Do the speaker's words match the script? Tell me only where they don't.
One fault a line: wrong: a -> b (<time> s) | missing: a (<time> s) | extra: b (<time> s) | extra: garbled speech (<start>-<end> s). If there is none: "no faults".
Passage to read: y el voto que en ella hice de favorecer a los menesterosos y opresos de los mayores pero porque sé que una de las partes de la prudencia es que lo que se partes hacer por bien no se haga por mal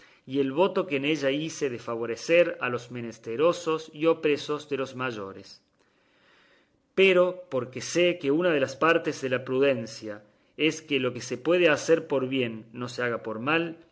wrong: partes -> puede (11.4 s)